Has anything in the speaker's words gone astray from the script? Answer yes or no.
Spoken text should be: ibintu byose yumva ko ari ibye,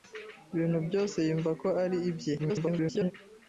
yes